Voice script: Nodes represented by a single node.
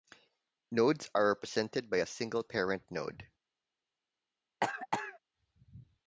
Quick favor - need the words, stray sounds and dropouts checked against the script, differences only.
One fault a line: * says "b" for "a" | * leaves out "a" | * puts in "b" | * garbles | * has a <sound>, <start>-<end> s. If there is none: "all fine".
* puts in "are"
* puts in "parent"
* has a cough, 4.6-5.2 s